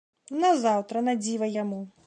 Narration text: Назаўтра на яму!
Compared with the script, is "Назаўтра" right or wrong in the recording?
right